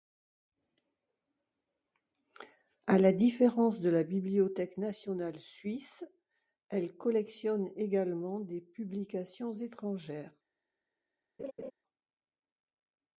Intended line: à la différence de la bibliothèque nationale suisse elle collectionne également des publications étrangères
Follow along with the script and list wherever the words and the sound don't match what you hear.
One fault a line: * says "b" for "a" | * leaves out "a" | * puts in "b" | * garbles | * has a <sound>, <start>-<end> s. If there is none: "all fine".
* has a laugh, 11.4-11.7 s